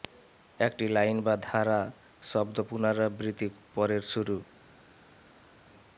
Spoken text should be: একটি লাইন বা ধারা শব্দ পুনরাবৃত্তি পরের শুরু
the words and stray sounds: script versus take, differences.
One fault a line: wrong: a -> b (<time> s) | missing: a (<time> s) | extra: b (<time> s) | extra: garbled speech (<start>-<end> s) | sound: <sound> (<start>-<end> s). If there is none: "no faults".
no faults